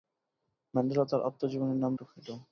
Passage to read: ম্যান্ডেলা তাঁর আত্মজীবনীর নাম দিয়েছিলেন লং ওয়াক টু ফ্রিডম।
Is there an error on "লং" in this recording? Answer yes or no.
yes